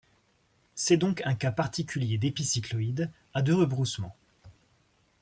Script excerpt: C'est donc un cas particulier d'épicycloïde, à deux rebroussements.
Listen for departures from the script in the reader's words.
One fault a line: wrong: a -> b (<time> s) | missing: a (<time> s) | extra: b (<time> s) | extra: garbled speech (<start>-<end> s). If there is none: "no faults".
no faults